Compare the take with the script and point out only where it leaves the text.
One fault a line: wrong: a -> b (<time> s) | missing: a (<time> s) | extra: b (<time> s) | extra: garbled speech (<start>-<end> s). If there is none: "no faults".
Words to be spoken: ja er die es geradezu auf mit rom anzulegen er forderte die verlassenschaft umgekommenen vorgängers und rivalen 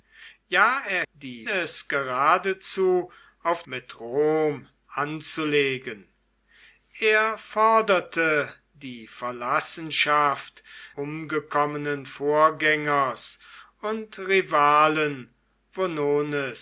no faults